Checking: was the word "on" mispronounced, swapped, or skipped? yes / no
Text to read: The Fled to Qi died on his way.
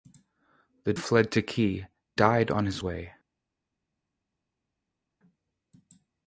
no